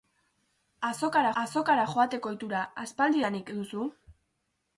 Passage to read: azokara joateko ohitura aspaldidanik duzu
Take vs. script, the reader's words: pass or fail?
fail